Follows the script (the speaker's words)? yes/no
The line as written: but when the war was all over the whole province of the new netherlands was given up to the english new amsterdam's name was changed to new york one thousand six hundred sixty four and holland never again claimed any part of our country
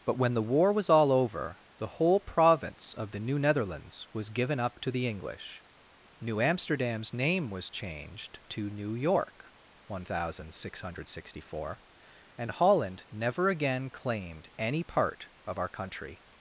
yes